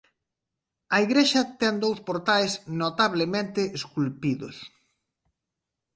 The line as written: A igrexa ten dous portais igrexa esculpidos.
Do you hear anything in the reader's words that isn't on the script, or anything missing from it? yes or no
yes